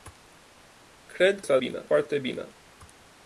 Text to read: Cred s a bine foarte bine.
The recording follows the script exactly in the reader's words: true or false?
true